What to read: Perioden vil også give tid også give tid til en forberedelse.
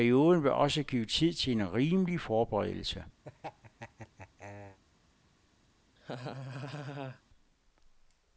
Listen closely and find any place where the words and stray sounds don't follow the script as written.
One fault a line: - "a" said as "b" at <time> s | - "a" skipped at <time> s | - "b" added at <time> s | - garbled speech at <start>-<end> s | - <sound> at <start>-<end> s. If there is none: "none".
- "også give tid" skipped at 1.3 s
- "rimelig" added at 1.7 s
- laugh at 3.2-4.8 s
- laugh at 6.0-7.2 s